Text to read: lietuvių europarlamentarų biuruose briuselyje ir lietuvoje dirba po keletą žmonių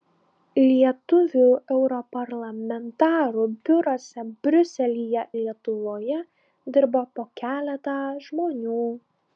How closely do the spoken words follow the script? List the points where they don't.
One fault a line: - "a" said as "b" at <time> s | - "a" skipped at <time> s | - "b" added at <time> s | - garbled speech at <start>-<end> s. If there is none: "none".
- "ir" skipped at 5.3 s